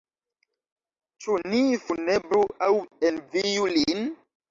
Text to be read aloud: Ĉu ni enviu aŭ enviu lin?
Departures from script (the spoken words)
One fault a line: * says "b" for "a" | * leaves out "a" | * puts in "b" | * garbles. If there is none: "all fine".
* says "funebru" for "enviu"